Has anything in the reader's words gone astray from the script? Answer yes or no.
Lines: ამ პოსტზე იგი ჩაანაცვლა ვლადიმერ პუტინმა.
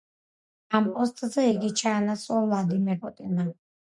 no